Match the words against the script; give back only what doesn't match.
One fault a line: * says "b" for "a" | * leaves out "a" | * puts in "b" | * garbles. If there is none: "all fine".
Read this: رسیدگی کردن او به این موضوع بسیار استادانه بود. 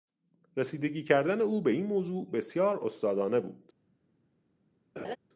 all fine